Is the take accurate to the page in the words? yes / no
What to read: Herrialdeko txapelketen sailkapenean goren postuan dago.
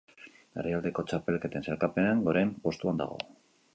yes